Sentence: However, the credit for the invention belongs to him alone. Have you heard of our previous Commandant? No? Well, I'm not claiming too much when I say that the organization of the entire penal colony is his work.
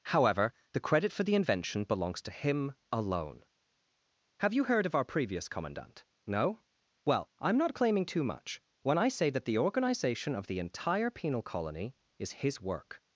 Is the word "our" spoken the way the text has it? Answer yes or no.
yes